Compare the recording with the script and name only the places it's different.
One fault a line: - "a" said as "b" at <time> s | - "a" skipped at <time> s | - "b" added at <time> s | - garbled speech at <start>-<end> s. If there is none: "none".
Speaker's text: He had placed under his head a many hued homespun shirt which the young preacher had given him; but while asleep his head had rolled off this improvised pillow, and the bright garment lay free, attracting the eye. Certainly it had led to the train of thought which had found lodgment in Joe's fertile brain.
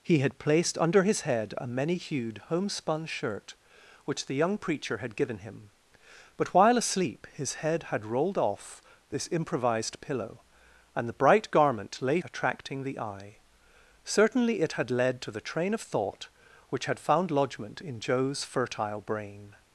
- "free" skipped at 12.2 s